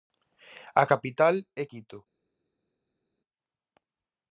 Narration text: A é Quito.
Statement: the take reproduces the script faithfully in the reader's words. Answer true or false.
false